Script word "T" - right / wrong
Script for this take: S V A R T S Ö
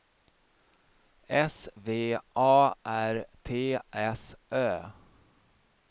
right